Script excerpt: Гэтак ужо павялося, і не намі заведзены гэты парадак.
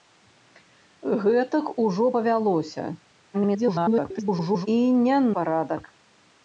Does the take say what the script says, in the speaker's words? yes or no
no